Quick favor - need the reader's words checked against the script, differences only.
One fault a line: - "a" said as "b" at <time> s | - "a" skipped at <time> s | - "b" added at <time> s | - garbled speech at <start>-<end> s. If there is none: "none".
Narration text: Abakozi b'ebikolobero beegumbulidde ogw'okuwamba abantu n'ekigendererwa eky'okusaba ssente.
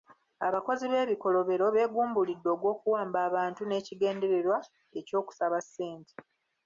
none